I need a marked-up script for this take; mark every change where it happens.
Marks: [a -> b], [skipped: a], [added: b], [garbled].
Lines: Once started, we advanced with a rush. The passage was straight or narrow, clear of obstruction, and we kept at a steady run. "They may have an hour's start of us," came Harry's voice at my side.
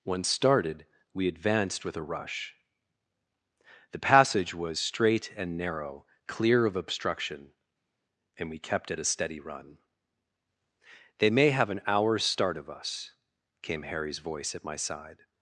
Once started, we advanced with a rush. The passage was straight [or -> and] narrow, clear of obstruction, and we kept at a steady run. "They may have an hour's start of us," came Harry's voice at my side.